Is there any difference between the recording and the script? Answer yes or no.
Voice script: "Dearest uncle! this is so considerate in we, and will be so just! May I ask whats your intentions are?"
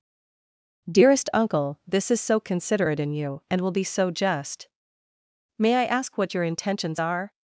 yes